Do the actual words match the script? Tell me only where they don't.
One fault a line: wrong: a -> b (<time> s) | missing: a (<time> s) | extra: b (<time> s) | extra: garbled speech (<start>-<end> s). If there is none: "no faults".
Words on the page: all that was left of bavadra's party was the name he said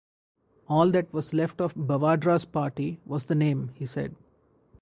no faults